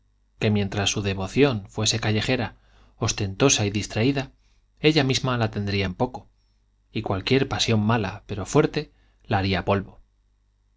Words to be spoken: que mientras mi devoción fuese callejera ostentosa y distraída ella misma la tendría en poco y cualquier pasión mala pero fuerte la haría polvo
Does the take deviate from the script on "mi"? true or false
true